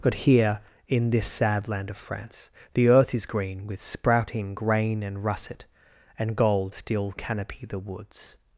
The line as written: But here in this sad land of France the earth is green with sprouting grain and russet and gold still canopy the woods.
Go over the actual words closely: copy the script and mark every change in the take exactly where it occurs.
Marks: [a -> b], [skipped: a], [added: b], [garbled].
But here in this sad land of France the earth is green with sprouting grain and russet and gold still canopy the woods.